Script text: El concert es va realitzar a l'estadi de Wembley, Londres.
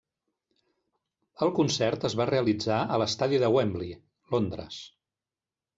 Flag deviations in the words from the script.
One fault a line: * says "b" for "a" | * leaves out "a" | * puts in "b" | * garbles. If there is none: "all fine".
all fine